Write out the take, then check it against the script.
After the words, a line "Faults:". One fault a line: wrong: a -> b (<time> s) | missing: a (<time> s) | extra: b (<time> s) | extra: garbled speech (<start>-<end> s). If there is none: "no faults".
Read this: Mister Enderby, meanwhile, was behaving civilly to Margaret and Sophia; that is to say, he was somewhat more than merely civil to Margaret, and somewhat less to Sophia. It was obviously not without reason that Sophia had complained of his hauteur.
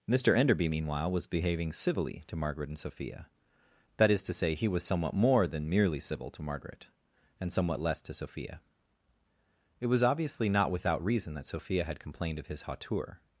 Mister Enderby, meanwhile, was behaving civilly to Margaret and Sophia; that is to say, he was somewhat more than merely civil to Margaret, and somewhat less to Sophia. It was obviously not without reason that Sophia had complained of his hauteur.
Faults:
no faults